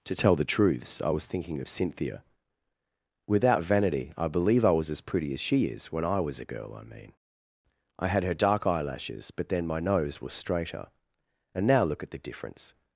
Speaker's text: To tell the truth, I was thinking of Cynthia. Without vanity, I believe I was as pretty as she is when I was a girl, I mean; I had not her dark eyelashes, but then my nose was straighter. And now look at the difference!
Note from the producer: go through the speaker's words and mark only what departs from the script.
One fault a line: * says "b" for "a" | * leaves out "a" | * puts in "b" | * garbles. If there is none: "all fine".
* says "truths" for "truth"
* leaves out "not"